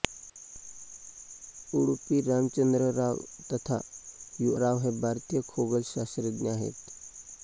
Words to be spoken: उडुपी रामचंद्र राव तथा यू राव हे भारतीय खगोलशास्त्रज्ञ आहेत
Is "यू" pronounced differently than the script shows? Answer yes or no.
no